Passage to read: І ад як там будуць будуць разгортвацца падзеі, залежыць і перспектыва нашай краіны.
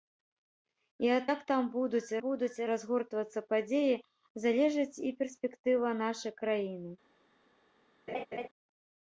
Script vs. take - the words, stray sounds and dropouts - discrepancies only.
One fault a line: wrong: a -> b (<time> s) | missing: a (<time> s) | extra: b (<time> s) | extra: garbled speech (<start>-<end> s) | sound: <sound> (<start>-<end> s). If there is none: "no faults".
sound: laugh (8.1-8.5 s)